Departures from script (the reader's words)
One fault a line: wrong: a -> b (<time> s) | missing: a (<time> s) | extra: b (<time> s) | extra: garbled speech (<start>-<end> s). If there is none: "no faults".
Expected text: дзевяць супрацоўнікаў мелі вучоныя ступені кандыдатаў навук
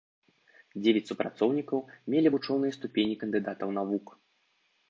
no faults